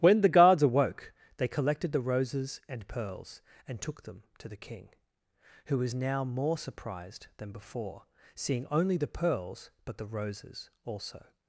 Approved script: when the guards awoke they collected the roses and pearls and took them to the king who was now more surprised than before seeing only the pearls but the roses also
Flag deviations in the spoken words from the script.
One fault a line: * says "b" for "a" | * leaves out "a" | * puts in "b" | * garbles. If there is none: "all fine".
all fine